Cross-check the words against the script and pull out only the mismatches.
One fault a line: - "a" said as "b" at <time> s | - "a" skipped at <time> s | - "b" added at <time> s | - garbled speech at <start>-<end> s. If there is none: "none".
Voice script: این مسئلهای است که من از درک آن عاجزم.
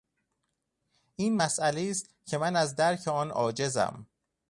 none